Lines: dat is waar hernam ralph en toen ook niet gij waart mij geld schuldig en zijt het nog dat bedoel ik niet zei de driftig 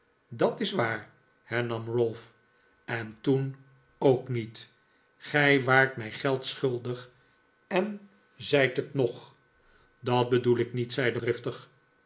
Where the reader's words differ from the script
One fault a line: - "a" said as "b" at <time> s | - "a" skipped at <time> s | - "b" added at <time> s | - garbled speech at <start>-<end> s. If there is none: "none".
none